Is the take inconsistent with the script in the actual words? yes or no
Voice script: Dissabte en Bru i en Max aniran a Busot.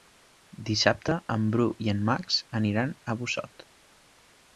no